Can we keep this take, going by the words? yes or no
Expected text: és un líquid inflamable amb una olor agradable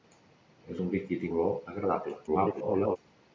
no